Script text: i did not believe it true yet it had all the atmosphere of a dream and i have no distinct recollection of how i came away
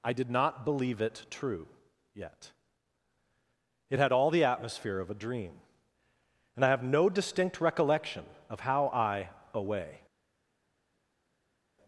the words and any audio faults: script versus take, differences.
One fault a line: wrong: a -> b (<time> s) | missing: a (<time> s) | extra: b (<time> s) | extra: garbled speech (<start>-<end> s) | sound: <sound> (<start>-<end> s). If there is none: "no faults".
missing: came (9.3 s)